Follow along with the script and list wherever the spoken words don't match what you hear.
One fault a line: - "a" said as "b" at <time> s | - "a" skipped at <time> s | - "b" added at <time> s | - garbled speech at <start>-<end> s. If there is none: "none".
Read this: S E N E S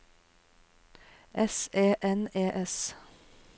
none